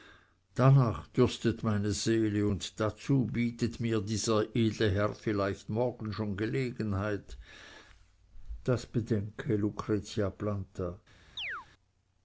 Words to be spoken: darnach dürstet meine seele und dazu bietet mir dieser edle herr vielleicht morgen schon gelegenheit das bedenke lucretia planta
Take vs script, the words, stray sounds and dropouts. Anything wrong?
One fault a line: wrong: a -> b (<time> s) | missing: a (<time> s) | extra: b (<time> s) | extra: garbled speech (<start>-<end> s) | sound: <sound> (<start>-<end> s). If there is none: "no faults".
sound: chirp (11.4-11.7 s)